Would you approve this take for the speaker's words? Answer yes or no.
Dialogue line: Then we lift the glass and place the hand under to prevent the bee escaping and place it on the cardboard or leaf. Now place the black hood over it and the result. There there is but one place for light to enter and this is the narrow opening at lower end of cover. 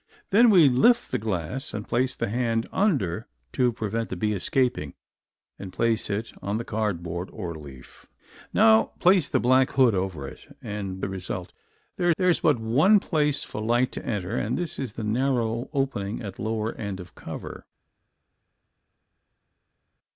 yes